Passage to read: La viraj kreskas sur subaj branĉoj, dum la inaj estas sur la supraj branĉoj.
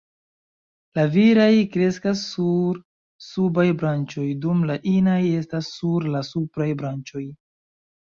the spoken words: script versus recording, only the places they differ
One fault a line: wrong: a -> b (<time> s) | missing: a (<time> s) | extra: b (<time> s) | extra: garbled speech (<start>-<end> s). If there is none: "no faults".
no faults